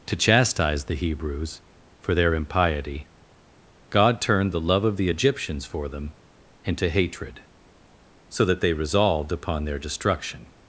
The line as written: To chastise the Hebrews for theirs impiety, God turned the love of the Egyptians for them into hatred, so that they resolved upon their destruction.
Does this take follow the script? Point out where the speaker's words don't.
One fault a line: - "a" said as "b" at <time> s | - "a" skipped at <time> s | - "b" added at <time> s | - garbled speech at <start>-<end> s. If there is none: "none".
- "theirs" said as "their" at 2.1 s